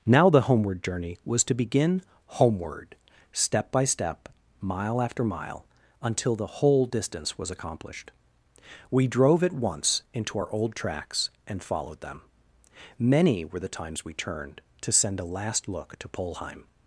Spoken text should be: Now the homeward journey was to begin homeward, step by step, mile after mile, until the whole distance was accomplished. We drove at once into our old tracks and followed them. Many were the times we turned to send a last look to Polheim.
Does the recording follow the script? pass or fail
pass